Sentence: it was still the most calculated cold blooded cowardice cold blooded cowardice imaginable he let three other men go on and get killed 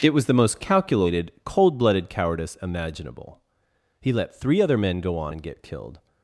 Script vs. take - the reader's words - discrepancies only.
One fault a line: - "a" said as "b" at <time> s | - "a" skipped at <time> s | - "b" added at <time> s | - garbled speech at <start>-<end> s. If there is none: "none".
- "still" skipped at 0.2 s
- "cold blooded cowardice" skipped at 2.5 s